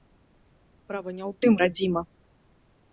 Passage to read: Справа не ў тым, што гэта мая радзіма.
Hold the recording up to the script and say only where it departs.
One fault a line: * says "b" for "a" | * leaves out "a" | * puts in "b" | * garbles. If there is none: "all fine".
* leaves out "што гэта мая"